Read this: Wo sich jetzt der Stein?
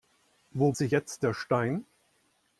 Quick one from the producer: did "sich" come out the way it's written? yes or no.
yes